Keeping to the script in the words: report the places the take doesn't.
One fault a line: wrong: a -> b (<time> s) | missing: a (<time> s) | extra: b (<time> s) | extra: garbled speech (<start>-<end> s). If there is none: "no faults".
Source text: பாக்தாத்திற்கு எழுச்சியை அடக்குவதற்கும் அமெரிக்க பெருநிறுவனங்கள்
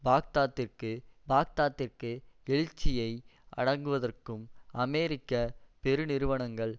extra: பாக்தாத்திற்கு (1.3 s)